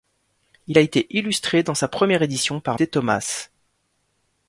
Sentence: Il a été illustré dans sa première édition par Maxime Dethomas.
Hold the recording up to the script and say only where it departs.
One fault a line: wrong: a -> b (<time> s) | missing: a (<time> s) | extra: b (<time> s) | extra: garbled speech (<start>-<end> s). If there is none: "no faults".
missing: Maxime (2.8 s)